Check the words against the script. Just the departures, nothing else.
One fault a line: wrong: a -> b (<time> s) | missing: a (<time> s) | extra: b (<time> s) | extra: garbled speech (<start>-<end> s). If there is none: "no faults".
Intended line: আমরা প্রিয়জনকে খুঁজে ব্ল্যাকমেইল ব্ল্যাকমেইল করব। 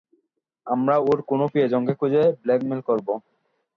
extra: ওর কোনো (1.0 s)
missing: ব্ল্যাকমেইল (2.8 s)